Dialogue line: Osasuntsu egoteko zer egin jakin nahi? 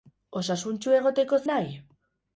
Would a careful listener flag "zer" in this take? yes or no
yes